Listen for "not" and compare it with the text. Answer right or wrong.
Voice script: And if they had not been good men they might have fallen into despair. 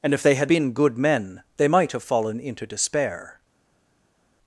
wrong